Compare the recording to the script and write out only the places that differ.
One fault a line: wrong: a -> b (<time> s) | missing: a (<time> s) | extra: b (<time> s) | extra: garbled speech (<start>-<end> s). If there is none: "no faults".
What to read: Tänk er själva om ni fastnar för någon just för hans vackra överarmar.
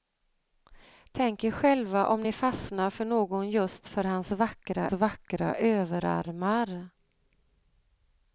extra: vackra (4.9 s)